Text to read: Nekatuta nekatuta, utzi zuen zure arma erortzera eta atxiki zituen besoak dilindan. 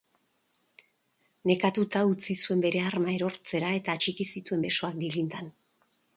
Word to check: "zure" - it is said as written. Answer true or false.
false